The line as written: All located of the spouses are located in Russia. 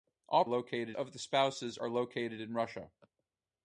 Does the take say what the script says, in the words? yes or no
yes